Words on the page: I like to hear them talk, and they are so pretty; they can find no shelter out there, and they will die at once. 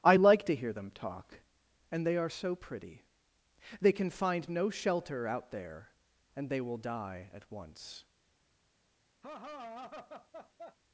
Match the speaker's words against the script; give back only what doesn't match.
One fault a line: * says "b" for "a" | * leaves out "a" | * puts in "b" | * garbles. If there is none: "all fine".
all fine